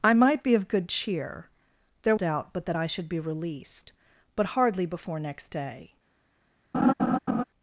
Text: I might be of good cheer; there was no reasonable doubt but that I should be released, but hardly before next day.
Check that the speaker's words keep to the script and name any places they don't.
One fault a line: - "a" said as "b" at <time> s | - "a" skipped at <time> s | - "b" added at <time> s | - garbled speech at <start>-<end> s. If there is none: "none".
- "was no reasonable" skipped at 2.1 s